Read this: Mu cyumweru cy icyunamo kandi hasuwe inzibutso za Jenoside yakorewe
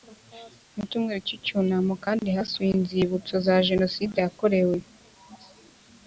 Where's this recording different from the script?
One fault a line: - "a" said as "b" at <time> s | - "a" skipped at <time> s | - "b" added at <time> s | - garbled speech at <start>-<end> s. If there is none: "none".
none